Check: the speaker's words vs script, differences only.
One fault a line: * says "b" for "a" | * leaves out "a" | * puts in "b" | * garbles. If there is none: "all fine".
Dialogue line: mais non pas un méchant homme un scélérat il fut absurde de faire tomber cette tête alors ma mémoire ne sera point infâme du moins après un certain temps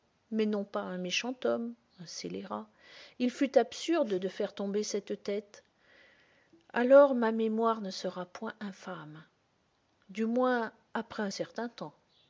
all fine